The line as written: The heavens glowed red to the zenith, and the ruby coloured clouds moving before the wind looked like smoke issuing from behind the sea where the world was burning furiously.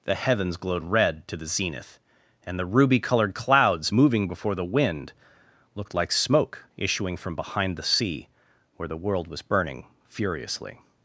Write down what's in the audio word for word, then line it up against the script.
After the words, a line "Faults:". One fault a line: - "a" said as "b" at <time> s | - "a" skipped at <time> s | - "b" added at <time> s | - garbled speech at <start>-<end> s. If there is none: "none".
The heavens glowed red to the zenith, and the ruby coloured clouds moving before the wind looked like smoke issuing from behind the sea where the world was burning furiously.
Faults:
none